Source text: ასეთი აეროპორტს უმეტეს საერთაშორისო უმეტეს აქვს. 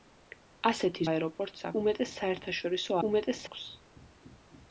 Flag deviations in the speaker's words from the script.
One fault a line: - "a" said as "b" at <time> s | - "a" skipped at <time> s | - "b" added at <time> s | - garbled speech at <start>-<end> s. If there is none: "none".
none